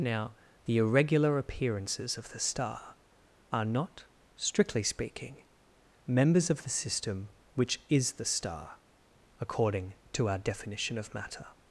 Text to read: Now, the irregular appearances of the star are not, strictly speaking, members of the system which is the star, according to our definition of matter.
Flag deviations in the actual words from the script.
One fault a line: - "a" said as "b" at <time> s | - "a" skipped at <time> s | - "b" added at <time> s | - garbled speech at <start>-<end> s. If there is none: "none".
none